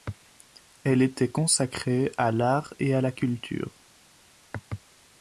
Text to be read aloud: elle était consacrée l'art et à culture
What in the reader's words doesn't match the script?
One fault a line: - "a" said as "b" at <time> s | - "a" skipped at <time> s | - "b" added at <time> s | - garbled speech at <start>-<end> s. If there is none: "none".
- "à" added at 2.2 s
- "la" added at 3.0 s